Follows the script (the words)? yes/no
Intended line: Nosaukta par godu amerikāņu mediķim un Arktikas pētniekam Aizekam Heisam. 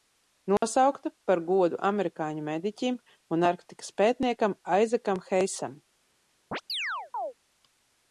yes